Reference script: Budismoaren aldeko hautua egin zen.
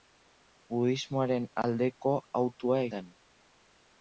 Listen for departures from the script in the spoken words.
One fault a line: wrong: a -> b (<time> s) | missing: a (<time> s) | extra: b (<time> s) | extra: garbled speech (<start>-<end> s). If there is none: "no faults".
missing: egin (2.9 s)